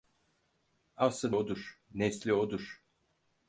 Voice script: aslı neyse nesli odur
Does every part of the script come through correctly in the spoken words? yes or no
no